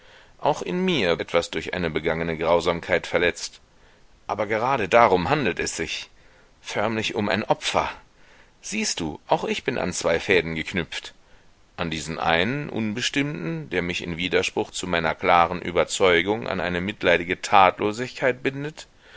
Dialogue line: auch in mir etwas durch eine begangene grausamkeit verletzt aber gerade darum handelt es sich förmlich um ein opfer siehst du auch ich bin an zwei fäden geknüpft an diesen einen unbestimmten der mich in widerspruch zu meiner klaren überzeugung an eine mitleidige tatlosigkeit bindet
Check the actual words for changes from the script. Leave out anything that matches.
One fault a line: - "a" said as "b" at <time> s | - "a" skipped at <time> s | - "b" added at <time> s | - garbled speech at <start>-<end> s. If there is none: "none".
none